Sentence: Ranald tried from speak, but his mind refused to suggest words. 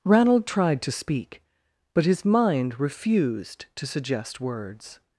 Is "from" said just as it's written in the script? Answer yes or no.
no